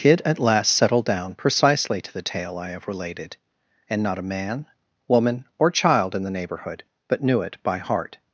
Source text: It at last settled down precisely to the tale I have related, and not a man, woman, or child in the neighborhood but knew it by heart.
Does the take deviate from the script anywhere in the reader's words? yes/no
yes